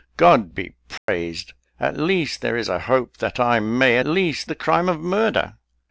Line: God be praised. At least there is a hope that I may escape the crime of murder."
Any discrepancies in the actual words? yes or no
yes